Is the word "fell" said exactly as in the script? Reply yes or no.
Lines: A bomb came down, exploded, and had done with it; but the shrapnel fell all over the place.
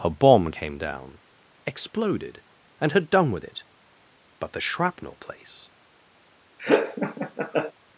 no